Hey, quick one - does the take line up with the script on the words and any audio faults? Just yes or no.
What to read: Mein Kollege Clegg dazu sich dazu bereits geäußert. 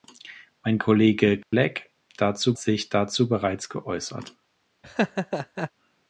no